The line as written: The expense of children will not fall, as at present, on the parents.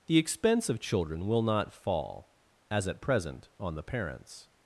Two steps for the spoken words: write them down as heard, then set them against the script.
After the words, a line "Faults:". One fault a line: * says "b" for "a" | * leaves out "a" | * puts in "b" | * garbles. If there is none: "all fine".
The expense of children will not fall, as at present, on the parents.
Faults:
all fine